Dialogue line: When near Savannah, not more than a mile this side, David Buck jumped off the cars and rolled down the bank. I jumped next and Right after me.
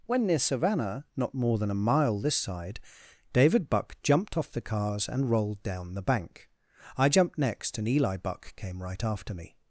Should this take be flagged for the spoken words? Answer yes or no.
yes